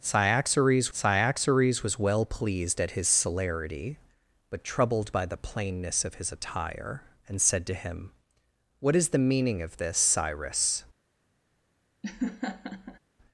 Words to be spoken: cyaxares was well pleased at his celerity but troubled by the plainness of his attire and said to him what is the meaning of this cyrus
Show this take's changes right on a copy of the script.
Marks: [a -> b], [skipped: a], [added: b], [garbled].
cyaxares [added: cyaxares] was well pleased at his celerity but troubled by the plainness of his attire and said to him what is the meaning of this cyrus